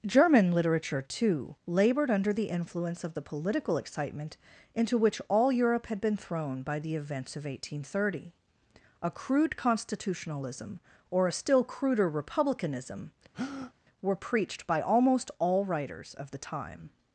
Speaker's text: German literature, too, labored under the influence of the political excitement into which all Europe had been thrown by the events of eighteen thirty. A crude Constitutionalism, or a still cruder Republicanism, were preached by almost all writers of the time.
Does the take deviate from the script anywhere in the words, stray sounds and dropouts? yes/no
yes